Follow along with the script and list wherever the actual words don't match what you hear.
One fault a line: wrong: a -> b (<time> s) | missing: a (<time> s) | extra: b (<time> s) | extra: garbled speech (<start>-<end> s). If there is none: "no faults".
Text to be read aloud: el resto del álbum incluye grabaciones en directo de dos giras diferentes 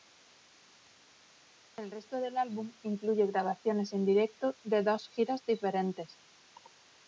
no faults